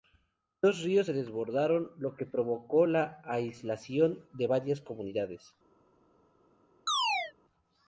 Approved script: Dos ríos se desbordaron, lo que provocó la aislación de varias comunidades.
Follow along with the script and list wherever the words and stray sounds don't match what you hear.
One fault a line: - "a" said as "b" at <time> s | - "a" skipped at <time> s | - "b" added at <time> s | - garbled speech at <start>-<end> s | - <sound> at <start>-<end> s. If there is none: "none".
- chirp at 6.9-7.3 s